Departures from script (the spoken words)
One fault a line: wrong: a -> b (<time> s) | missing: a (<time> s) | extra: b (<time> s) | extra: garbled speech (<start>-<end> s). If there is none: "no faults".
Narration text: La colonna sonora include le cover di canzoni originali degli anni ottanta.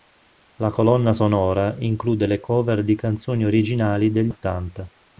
missing: anni (4.3 s)